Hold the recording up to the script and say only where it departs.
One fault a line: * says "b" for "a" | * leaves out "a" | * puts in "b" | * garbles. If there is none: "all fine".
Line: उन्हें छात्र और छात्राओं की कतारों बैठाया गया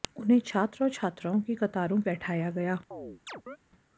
all fine